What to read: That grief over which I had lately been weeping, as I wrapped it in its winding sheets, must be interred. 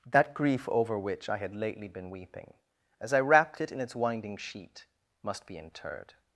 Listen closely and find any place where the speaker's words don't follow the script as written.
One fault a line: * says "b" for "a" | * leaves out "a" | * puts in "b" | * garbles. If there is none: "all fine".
* says "sheet" for "sheets"